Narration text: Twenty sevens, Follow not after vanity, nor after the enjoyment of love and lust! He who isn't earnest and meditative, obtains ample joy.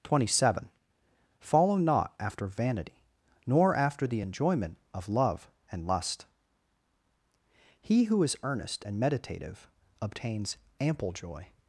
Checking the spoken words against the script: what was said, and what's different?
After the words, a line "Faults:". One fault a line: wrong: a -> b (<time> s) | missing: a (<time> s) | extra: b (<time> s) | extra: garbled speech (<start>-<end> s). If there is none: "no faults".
Twenty seven, Follow not after vanity, nor after the enjoyment of love and lust! He who is earnest and meditative, obtains ample joy.
Faults:
wrong: sevens -> seven (0.4 s)
wrong: isn't -> is (8.2 s)